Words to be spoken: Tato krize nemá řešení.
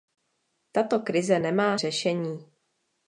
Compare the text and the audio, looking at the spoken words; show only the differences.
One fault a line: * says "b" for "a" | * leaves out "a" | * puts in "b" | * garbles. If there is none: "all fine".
all fine